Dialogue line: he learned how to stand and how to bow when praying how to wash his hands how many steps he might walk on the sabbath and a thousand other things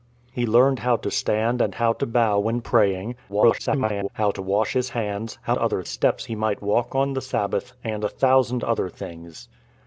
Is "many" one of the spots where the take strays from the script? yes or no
yes